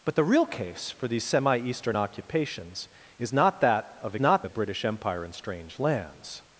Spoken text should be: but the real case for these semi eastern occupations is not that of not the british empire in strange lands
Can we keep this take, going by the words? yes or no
yes